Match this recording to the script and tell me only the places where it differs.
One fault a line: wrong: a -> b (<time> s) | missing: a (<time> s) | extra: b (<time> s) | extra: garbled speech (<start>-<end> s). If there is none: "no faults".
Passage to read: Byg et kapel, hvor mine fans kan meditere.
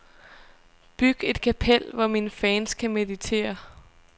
no faults